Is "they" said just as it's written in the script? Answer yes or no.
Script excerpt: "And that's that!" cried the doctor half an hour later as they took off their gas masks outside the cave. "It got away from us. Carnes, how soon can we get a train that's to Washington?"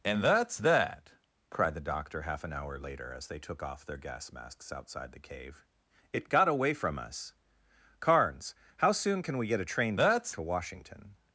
yes